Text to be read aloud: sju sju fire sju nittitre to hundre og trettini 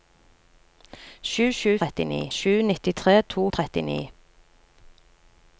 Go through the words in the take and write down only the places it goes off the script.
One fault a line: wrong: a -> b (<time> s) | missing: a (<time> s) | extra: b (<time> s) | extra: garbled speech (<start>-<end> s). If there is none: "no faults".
wrong: fire -> trettini (1.8 s)
missing: hundre (3.4 s)